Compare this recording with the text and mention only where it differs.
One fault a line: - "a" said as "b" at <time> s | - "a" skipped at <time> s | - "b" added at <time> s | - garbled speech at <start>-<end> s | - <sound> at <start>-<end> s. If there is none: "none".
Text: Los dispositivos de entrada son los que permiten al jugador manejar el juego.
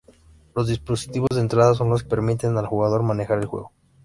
- dropout at 1.3-1.3 s
- "que" skipped at 2.0 s